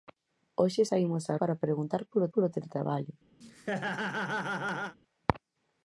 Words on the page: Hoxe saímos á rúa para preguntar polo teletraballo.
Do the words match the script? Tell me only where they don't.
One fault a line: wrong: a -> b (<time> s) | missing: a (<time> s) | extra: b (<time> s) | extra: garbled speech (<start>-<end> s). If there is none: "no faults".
missing: rúa (1.3 s)
extra: polo (2.3 s)